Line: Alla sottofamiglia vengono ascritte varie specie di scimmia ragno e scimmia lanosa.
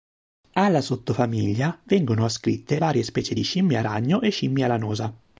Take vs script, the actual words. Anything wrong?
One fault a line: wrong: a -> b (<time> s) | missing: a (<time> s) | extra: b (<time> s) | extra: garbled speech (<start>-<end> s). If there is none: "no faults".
no faults